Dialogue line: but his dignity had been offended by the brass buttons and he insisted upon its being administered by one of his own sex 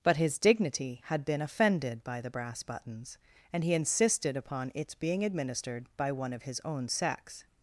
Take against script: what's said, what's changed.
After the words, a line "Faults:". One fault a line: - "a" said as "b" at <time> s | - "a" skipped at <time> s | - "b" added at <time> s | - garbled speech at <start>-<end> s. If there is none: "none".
but his dignity had been offended by the brass buttons and he insisted upon its being administered by one of his own sex
Faults:
none